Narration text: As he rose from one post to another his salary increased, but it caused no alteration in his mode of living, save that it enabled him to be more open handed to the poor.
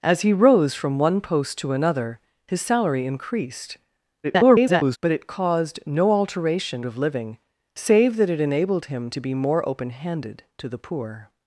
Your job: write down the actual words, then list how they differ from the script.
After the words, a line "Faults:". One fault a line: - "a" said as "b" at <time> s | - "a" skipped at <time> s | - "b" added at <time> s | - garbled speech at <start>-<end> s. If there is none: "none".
As he rose from one post to another his salary increased, [garbled] but it caused no alteration of living, save that it enabled him to be more open handed to the poor.
Faults:
- garbled speech at 4.2-5.0 s
- "in his mode" skipped at 6.8 s